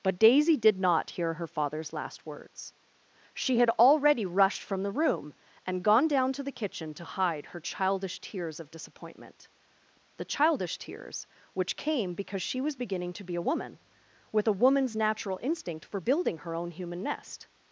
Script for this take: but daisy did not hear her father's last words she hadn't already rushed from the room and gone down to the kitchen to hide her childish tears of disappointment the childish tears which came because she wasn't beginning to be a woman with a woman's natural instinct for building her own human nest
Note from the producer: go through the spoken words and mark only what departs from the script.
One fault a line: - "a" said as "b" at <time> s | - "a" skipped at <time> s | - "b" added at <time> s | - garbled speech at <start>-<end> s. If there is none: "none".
- "hadn't" said as "had" at 3.6 s
- "wasn't" said as "was" at 12.6 s